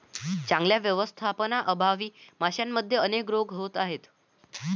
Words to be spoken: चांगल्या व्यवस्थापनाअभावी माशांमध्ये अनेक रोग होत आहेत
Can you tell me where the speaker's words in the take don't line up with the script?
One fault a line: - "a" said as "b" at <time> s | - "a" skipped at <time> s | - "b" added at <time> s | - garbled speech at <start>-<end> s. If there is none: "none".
none